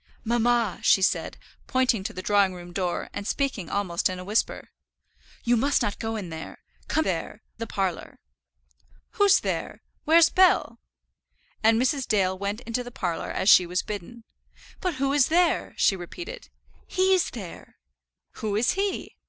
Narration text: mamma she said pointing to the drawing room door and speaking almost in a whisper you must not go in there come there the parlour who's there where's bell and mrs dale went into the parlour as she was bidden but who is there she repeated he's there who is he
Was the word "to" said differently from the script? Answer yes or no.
no